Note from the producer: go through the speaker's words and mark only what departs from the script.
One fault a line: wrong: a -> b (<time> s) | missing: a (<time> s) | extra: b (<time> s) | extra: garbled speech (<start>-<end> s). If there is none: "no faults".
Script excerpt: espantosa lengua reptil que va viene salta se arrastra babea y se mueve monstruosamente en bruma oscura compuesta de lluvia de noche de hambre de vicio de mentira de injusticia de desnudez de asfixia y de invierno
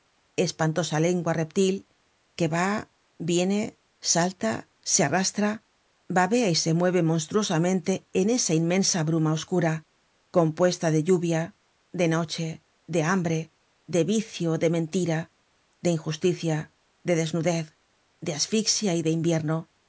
extra: esa inmensa (8.3 s)